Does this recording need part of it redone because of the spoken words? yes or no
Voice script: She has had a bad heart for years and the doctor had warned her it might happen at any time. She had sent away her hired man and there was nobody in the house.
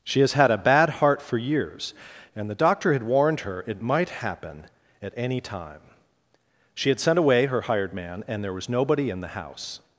no